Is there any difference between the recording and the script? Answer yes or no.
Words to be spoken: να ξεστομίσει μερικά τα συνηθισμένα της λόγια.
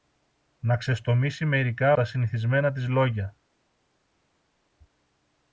no